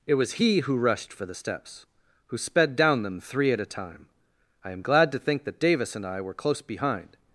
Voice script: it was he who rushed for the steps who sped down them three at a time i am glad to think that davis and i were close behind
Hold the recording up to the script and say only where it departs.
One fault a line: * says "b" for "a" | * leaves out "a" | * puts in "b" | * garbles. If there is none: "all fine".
all fine